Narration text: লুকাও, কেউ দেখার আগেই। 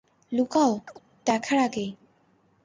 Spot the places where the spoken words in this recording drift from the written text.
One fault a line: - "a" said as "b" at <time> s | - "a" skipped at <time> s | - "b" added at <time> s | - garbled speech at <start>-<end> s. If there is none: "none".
- "কেউ" skipped at 0.7 s